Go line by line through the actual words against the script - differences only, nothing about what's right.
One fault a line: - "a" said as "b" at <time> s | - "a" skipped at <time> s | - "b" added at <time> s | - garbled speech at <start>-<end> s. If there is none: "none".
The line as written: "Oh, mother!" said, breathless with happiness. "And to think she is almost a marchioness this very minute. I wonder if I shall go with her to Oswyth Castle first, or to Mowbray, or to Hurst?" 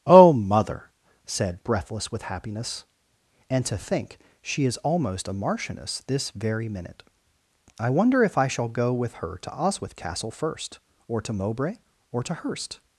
none